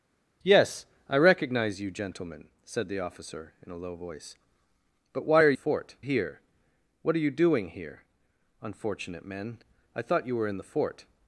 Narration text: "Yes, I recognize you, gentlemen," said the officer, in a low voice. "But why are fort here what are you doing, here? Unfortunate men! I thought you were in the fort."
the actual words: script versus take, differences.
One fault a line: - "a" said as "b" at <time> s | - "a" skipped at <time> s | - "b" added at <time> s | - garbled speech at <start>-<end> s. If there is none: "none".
none